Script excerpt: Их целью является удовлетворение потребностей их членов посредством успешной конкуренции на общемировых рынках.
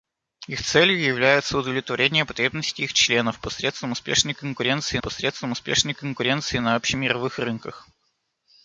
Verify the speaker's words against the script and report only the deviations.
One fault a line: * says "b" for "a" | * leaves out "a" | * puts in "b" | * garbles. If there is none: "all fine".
* puts in "посредством успешной конкуренции"